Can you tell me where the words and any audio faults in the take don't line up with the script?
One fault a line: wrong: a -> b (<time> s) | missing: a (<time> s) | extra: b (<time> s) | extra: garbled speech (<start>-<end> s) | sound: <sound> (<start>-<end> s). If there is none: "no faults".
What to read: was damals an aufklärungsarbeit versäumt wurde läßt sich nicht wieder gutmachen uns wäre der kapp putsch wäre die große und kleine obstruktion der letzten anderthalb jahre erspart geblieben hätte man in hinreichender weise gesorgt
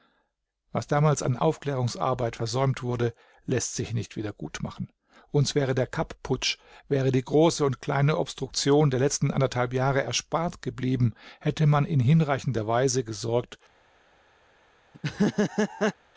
sound: laugh (14.9-15.9 s)